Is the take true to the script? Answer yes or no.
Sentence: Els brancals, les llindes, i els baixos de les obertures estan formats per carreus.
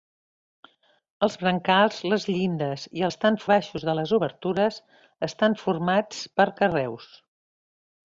no